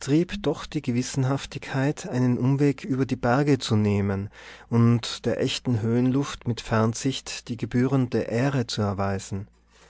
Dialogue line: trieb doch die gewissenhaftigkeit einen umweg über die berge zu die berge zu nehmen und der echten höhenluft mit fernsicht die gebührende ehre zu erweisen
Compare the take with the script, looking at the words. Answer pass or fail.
fail